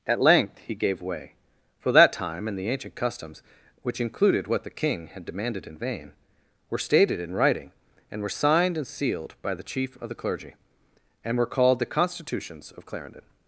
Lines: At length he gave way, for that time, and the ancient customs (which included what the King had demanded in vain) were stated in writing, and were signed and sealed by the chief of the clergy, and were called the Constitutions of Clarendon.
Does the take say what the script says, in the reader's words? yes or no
yes